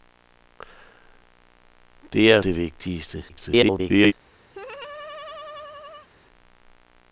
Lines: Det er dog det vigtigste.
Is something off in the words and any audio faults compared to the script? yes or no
yes